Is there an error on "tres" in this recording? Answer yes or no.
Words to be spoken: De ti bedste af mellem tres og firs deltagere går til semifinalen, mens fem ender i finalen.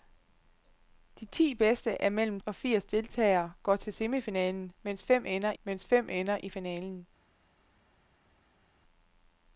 yes